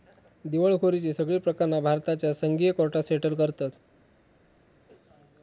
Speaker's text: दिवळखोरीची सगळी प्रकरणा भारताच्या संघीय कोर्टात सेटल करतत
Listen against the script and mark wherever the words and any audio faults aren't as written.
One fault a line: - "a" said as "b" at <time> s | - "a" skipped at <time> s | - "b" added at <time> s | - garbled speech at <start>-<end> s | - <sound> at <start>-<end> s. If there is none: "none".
none